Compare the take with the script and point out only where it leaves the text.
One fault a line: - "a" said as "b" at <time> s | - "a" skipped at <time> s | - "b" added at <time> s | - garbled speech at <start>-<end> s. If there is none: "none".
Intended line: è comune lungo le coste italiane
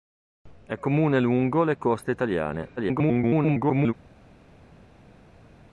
- garbled speech at 2.8-3.9 s